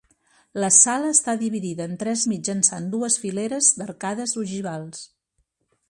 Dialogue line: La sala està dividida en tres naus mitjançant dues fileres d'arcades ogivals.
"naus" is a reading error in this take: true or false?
true